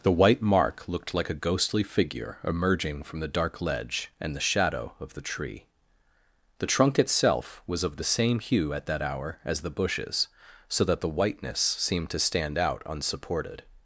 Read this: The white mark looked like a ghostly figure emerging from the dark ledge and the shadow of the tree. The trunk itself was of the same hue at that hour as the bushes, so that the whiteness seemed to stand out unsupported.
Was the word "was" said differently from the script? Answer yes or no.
no